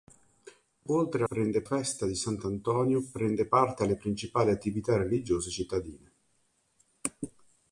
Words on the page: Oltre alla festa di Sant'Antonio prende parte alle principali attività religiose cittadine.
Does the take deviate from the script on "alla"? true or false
true